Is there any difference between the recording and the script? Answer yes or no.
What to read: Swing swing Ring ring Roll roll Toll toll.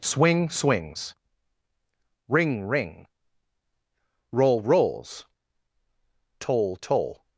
yes